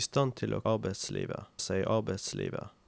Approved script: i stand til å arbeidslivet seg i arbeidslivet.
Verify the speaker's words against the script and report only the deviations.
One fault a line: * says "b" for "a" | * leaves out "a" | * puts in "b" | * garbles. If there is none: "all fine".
all fine